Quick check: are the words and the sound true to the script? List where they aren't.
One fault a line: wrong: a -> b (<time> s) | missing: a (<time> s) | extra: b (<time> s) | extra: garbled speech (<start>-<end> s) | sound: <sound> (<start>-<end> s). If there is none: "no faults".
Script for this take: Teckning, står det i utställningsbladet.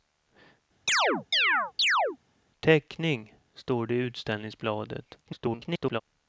sound: chirp (0.9-2.2 s)
extra: garbled speech (5.3-6.0 s)